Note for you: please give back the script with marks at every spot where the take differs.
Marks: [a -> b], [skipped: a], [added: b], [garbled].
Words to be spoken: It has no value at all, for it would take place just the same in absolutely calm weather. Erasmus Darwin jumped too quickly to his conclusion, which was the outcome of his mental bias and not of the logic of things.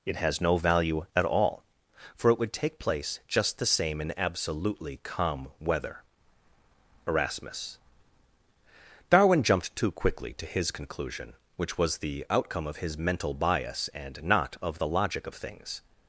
It has no value at all, for it would take place just the same in absolutely calm weather. Erasmus Darwin jumped too quickly to his conclusion, which was the outcome of his mental bias and not of the logic of things.